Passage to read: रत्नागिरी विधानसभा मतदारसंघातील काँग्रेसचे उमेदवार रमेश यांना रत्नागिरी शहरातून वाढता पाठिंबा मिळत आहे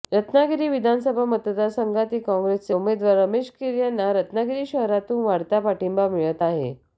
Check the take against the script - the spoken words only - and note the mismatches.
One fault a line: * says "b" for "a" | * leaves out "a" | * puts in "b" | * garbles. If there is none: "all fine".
* puts in "कीर"